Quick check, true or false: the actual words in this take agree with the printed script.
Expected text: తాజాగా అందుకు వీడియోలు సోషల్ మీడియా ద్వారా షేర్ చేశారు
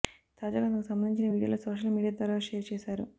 false